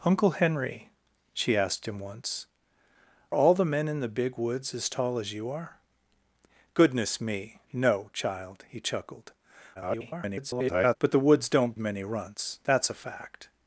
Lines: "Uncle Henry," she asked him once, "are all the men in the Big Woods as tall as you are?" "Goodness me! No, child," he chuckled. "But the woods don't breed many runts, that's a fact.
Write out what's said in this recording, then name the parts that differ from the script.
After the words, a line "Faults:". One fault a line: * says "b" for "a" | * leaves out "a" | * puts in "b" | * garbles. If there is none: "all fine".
"Uncle Henry," she asked him once, "all the men in the Big Woods as tall as you are?" "Goodness me! No, child," he chuckled. [garbled] "But the woods don't many runts, that's a fact.
Faults:
* leaves out "are"
* garbles
* leaves out "breed"